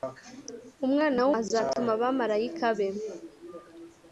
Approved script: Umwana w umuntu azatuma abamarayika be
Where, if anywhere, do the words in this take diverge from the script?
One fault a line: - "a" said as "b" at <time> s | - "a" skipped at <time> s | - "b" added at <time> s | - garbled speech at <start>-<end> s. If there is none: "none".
- "umuntu" skipped at 1.3 s